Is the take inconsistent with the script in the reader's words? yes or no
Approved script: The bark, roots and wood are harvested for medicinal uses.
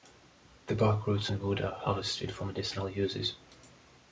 no